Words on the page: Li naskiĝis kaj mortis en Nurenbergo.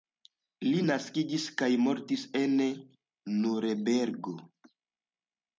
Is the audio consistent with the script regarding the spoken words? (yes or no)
yes